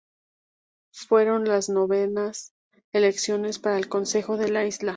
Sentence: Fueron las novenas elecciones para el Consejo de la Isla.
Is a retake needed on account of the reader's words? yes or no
no